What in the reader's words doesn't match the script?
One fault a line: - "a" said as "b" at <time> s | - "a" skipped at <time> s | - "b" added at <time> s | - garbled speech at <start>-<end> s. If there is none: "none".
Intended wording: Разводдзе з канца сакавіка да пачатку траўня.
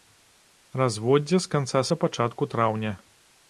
- "сакавіка" skipped at 1.8 s